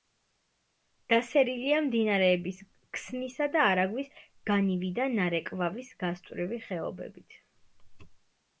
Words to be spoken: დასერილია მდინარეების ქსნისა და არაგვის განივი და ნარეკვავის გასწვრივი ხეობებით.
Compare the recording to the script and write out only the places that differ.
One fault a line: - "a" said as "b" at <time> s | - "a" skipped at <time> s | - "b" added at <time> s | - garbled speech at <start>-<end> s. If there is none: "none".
none